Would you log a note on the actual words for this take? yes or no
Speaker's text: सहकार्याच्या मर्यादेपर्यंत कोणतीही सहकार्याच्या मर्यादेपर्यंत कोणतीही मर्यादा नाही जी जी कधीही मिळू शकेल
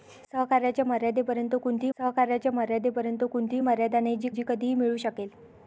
no